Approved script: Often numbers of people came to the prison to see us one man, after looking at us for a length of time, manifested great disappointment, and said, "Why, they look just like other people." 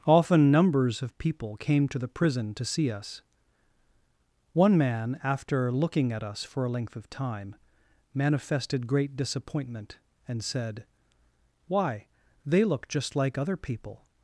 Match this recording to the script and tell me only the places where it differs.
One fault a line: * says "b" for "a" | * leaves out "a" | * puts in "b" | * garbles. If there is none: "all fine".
all fine